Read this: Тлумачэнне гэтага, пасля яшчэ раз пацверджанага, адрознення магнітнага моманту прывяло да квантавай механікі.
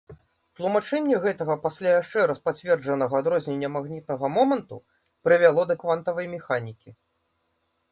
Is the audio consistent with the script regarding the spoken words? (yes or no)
yes